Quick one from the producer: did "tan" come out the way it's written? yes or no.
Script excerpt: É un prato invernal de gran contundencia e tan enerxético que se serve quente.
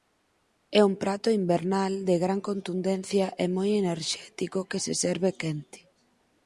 no